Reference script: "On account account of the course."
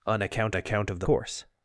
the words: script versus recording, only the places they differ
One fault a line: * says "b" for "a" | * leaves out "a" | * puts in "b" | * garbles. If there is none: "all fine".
all fine